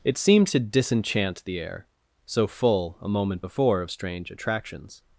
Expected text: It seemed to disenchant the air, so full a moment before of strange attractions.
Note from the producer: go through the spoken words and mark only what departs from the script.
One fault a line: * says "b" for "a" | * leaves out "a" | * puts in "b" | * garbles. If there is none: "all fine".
all fine